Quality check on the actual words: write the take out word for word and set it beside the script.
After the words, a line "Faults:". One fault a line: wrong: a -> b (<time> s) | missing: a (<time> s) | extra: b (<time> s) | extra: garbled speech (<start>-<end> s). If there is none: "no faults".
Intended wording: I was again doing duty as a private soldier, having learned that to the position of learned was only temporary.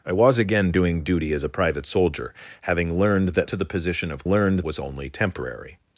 I was again doing duty as a private soldier, having learned that to the position of learned was only temporary.
Faults:
no faults